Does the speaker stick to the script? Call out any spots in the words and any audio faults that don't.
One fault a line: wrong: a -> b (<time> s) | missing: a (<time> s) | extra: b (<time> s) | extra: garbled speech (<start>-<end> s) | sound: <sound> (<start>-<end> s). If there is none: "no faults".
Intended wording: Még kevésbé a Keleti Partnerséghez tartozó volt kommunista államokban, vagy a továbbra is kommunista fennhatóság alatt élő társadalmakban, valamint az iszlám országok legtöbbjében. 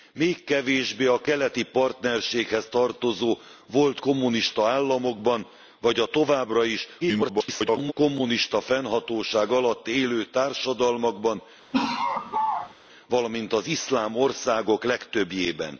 extra: garbled speech (7.0-7.9 s)
sound: laugh (11.7-12.7 s)